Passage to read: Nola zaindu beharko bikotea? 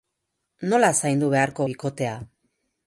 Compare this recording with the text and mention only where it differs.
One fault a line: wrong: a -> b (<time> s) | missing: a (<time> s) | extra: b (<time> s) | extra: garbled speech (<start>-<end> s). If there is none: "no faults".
no faults